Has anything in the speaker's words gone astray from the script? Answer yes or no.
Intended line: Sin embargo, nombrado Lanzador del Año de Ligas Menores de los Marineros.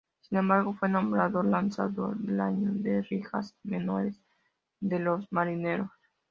yes